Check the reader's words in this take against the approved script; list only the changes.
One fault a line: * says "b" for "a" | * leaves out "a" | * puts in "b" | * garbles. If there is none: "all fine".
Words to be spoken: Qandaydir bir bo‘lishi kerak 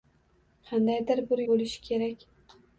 all fine